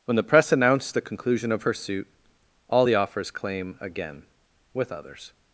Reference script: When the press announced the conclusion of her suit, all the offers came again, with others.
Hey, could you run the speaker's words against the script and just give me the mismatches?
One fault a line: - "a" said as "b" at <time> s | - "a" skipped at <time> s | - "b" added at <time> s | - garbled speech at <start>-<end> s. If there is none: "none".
- "came" said as "claim" at 3.3 s